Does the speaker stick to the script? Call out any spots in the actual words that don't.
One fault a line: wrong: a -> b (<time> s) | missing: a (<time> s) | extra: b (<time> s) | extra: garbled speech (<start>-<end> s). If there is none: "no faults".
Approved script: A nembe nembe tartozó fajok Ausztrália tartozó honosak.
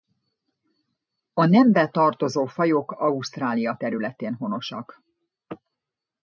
missing: nembe (1.9 s)
wrong: tartozó -> területén (3.8 s)